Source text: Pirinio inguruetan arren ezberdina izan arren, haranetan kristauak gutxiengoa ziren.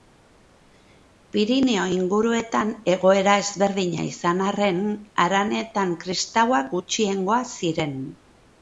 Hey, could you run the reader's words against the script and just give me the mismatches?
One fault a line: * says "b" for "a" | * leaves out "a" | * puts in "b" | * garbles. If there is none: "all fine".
* says "egoera" for "arren"